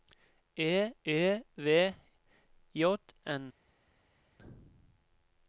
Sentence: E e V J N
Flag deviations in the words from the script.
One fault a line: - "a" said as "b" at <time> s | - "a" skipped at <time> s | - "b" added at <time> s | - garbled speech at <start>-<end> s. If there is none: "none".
none